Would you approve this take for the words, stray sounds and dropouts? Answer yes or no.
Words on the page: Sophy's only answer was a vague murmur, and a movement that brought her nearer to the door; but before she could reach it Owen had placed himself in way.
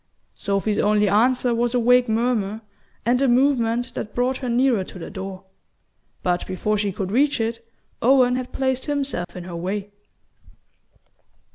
no